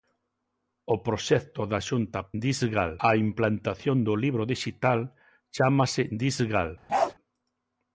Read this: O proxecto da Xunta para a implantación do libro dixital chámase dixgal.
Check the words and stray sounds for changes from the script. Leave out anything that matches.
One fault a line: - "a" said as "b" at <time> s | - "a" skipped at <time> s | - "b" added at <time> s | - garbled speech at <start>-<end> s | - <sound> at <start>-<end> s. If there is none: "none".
- "para" said as "dixgal" at 2.4 s
- bark at 6.9-7.1 s